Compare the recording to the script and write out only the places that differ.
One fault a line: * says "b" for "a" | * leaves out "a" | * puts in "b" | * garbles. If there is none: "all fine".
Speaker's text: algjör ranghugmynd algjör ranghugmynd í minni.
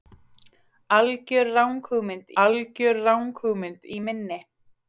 all fine